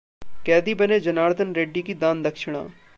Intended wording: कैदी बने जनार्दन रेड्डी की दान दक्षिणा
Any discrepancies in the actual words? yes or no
no